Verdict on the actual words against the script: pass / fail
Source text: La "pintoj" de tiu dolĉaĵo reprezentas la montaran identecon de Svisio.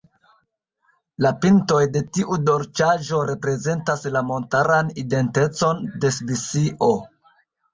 pass